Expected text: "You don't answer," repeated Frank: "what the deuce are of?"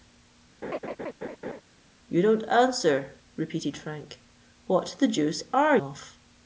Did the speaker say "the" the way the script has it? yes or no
yes